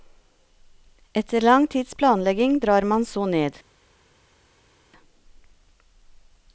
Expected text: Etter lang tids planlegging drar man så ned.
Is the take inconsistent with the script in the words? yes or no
no